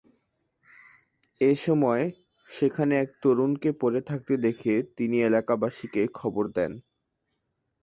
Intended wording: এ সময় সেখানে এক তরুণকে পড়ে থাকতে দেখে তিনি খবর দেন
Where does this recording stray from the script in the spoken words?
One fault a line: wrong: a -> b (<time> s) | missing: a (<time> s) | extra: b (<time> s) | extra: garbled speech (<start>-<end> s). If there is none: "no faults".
extra: এলাকাবাসীকে (5.2 s)